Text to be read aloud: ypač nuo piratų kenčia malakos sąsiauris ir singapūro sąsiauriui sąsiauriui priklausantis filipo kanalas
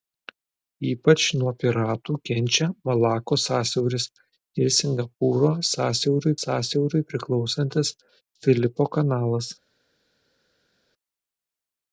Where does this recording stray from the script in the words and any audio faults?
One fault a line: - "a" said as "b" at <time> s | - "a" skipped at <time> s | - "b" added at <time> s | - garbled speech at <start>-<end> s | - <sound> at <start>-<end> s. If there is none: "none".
none